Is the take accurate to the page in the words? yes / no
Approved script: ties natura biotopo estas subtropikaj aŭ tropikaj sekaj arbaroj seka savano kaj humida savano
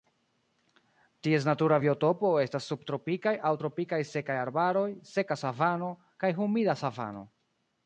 yes